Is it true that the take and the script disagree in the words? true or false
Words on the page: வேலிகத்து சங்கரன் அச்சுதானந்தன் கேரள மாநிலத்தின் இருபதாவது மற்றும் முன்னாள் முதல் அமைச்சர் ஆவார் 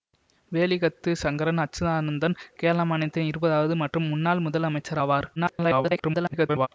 true